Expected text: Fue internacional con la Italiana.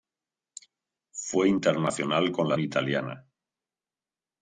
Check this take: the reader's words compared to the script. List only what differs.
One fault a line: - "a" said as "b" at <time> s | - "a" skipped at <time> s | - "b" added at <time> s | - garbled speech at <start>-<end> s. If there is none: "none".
none